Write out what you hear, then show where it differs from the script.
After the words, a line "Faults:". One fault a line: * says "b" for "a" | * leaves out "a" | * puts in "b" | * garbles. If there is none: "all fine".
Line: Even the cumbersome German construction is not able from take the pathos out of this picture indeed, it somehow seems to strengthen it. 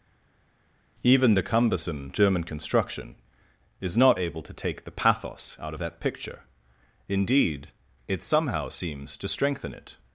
Even the cumbersome German construction is not able to take the pathos out of that picture indeed, it somehow seems to strengthen it.
Faults:
* says "to" for "from"
* says "that" for "this"